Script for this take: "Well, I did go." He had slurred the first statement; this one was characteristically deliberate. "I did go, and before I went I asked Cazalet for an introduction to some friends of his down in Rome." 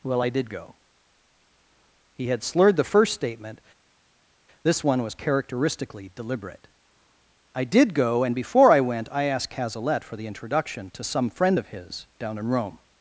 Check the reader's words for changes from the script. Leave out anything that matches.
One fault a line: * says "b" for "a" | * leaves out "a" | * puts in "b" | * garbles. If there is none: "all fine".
* says "the" for "an"
* says "friend" for "friends"